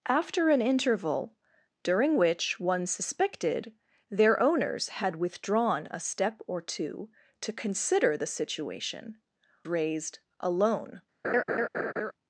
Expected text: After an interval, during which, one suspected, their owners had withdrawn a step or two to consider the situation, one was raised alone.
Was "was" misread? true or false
true